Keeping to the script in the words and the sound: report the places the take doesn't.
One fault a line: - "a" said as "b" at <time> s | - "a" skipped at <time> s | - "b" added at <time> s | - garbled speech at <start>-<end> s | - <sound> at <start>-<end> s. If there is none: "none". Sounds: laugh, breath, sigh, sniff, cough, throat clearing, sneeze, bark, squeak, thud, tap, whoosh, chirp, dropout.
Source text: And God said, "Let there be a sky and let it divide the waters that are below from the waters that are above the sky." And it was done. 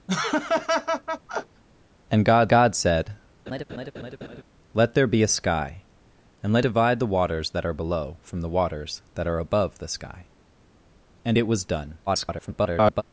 - laugh at 0.1-1.6 s
- "God" added at 2.5 s
- laugh at 3.5-4.4 s
- "it" skipped at 6.7 s
- garbled speech at 12.1-13.0 s